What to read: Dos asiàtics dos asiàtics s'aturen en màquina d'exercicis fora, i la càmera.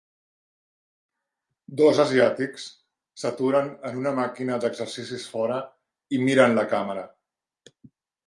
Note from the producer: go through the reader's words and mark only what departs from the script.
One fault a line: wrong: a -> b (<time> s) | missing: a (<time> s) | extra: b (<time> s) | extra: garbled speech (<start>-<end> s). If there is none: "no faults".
missing: dos asiàtics (2.6 s)
extra: una (4.0 s)
extra: miren (6.3 s)